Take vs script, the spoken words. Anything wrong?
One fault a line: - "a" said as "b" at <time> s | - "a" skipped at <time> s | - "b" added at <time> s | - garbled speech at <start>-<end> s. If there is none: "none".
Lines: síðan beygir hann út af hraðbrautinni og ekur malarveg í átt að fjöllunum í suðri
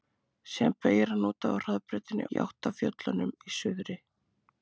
- "og ekur malarveg" skipped at 2.2 s